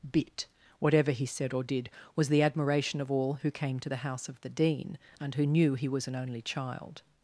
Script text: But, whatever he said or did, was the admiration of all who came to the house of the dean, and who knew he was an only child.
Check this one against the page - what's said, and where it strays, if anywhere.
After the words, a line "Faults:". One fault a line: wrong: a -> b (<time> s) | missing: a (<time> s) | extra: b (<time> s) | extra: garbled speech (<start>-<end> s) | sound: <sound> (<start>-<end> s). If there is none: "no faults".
Bit, whatever he said or did, was the admiration of all who came to the house of the dean, and who knew he was an only child.
Faults:
wrong: But -> Bit (0.1 s)